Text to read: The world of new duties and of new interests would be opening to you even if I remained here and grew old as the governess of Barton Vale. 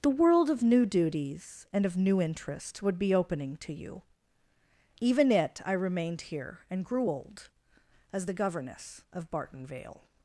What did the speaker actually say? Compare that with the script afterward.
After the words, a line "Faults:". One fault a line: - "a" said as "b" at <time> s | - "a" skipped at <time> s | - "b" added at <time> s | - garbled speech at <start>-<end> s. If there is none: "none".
The world of new duties and of new interests would be opening to you even it I remained here and grew old as the governess of Barton Vale.
Faults:
- "if" said as "it" at 5.3 s